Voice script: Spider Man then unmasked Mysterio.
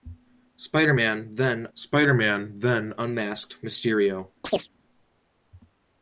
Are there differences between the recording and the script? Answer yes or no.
yes